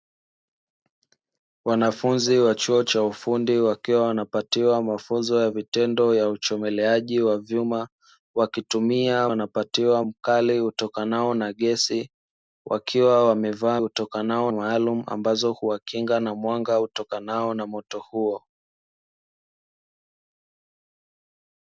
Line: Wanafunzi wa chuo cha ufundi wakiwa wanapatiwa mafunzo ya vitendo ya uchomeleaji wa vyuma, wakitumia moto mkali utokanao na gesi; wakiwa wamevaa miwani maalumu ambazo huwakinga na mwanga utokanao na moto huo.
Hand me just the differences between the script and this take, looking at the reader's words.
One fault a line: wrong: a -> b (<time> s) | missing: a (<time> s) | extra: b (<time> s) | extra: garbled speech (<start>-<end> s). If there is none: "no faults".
wrong: moto -> wanapatiwa (9.3 s)
wrong: miwani -> utokanao (13.8 s)